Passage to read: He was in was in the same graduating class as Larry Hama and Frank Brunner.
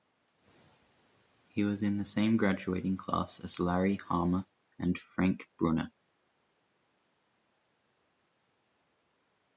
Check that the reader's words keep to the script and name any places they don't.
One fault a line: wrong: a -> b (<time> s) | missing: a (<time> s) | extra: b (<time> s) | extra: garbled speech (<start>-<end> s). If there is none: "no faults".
missing: was in (2.0 s)